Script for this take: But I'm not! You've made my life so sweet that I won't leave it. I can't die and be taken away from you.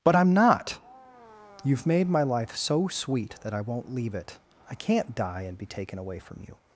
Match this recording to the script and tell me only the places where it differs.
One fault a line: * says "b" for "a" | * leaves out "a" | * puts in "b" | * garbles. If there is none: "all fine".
all fine